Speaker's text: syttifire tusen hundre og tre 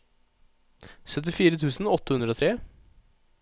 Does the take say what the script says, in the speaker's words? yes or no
no